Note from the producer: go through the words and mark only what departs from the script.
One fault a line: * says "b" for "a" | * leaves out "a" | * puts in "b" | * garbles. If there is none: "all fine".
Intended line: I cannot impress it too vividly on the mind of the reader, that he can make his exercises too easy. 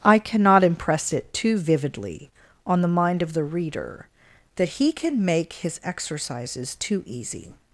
all fine